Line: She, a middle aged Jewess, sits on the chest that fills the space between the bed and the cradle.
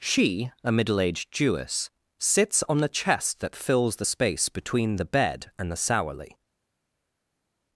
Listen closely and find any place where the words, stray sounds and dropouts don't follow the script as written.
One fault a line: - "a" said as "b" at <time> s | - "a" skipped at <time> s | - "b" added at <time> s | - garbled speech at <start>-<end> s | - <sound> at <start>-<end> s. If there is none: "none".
- "cradle" said as "sourly" at 5.8 s